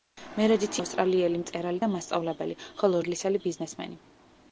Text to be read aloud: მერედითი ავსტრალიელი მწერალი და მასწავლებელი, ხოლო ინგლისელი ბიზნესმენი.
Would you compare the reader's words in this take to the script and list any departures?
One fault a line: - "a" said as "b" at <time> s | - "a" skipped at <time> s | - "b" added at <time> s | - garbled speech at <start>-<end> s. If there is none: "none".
none